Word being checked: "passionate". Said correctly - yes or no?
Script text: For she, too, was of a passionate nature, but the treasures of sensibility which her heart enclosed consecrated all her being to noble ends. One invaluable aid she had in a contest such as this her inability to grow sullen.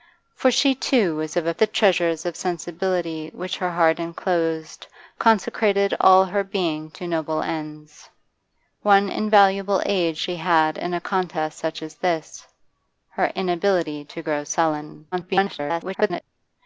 no